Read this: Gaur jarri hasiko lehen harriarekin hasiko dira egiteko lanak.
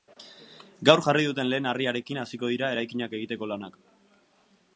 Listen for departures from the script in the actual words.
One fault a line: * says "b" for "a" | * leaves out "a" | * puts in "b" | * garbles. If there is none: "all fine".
* says "duten" for "hasiko"
* puts in "eraikinak"